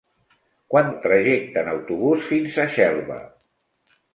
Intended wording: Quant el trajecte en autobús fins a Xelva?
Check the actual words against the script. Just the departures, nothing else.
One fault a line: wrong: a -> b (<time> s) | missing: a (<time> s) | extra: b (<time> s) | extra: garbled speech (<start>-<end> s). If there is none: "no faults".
no faults